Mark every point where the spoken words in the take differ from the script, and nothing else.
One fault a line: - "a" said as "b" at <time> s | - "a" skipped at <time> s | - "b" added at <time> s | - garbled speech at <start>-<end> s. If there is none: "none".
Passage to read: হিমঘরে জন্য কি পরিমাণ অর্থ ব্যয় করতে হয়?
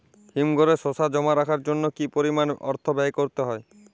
- "শসা জমা রাখার" added at 0.8 s